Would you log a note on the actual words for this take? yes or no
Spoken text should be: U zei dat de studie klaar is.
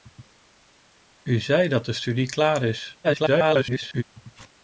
yes